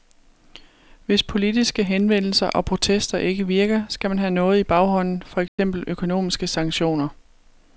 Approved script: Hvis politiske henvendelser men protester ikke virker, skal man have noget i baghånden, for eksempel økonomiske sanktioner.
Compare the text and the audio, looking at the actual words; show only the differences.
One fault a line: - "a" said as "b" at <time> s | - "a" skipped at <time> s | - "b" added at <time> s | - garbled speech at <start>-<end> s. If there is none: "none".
- "men" said as "og" at 2.5 s